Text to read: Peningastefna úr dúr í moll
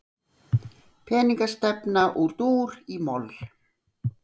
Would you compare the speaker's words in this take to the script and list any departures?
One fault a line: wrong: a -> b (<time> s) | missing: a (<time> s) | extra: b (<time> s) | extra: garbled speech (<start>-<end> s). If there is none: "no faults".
no faults